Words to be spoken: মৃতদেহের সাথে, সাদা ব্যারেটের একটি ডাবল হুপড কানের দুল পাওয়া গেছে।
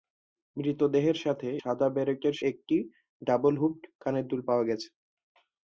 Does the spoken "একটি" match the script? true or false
true